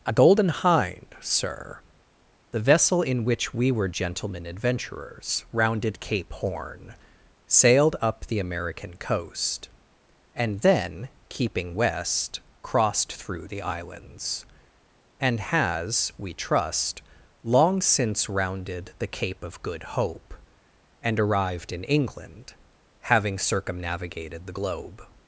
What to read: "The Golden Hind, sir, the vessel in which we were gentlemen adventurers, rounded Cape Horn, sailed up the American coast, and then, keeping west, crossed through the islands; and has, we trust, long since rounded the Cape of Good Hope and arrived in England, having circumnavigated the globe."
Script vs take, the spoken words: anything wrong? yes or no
yes